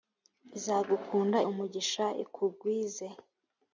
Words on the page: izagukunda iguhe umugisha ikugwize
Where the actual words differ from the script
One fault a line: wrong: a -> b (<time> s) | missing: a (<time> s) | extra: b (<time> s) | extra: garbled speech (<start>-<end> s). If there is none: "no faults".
missing: iguhe (1.4 s)